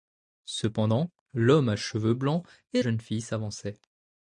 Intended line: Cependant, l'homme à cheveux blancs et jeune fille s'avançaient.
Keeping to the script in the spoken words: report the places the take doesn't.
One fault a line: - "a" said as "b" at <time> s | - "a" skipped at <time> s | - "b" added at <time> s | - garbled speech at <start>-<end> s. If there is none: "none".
none